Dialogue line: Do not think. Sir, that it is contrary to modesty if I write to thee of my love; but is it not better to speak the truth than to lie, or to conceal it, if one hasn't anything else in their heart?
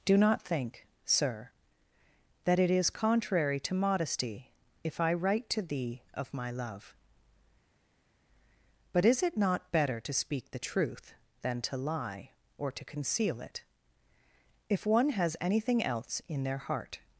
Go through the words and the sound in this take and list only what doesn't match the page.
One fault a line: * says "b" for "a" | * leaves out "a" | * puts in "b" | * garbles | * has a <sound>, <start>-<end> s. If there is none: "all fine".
* says "has" for "hasn't"